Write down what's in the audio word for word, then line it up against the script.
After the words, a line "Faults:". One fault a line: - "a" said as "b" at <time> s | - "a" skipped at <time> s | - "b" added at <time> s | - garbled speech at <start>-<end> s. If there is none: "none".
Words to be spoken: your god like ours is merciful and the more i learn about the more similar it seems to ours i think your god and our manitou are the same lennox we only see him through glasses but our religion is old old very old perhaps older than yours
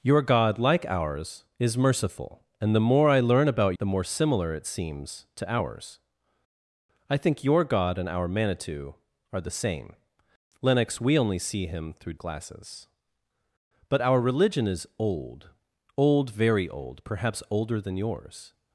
your god like ours is merciful and the more i learn about the more similar it seems to ours i think your god and our manitou are the same lennox we only see him through glasses but our religion is old old very old perhaps older than yours
Faults:
none